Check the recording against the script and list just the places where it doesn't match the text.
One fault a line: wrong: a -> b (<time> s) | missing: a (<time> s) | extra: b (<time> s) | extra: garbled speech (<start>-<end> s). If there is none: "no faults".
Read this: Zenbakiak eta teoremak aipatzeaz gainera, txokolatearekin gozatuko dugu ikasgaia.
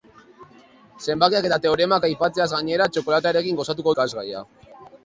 missing: dugu (3.9 s)